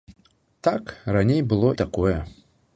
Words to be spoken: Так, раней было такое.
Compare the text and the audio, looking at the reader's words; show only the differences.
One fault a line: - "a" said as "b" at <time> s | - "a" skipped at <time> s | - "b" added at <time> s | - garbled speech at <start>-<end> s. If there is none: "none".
none